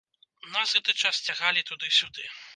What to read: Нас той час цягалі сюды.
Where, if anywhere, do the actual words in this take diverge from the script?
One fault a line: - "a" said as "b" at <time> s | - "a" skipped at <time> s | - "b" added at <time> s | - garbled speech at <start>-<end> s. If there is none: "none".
- "той" said as "гэты" at 0.7 s
- "туды" added at 1.7 s